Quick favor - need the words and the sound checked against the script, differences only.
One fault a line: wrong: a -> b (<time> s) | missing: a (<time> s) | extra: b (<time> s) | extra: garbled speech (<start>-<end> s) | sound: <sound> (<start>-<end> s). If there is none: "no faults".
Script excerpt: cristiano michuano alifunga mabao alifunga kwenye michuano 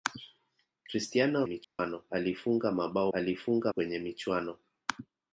sound: dropout (1.6-1.8 s)